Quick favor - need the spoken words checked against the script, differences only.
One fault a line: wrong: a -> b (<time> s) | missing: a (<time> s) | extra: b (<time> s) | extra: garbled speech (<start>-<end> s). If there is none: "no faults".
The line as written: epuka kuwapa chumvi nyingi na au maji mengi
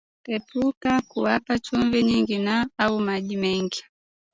no faults